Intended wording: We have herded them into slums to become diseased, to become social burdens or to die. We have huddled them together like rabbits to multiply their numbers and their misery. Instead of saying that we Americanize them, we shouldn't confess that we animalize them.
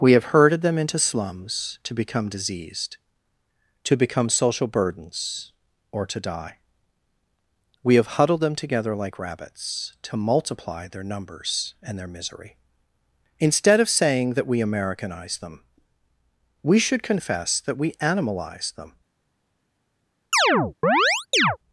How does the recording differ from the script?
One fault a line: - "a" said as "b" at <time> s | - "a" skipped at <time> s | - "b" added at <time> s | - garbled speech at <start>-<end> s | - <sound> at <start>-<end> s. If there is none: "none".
- "shouldn't" said as "should" at 16.8 s
- chirp at 20.3-21.6 s